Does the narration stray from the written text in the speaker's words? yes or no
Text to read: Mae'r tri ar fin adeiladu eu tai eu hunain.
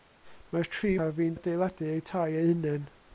no